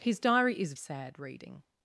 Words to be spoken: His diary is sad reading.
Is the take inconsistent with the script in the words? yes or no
no